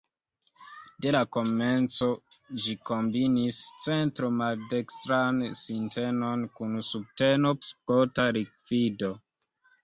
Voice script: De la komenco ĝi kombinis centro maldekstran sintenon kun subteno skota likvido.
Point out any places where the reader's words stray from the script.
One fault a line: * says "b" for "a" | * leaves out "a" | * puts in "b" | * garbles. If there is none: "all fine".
all fine